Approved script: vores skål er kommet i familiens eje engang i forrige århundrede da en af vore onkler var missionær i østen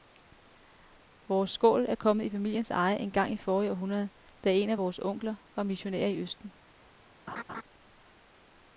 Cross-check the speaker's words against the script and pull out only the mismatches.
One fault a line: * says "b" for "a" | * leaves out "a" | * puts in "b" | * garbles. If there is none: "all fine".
all fine